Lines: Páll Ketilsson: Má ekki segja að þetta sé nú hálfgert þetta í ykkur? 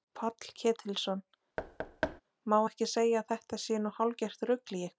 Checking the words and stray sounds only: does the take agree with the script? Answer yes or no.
no